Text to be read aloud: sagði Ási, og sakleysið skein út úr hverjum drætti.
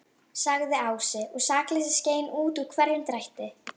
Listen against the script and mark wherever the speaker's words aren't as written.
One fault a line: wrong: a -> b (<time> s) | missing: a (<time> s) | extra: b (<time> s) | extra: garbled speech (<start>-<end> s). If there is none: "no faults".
no faults